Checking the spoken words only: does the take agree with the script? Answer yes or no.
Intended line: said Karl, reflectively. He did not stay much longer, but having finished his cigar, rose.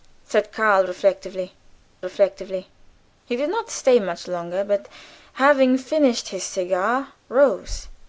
no